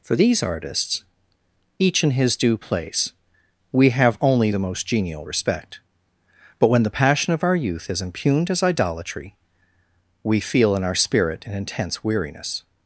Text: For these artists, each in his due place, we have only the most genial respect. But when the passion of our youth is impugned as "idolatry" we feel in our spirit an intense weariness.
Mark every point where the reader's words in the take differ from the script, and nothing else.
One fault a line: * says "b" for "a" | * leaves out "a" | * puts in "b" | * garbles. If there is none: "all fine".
all fine